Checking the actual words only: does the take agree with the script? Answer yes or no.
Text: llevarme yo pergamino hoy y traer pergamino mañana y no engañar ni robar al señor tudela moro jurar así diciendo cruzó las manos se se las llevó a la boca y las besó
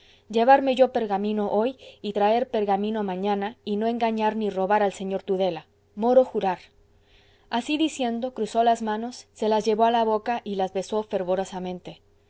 no